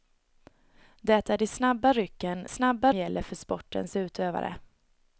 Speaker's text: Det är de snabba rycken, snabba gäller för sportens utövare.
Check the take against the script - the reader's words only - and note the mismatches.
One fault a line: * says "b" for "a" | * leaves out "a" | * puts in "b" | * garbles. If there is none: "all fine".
all fine